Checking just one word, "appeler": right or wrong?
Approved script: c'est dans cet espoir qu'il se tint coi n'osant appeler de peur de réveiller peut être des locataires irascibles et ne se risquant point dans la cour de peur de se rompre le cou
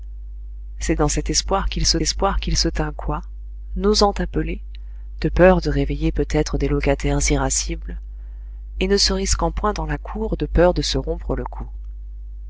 right